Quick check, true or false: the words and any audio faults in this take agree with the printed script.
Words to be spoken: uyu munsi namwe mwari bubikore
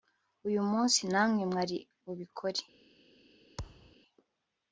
false